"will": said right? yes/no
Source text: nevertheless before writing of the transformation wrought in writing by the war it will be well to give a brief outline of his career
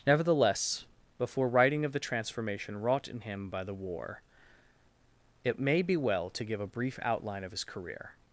no